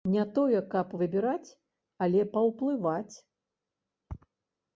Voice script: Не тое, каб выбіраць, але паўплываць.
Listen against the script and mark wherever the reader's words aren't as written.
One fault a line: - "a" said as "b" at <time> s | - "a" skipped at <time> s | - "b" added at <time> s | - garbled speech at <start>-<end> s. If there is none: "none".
none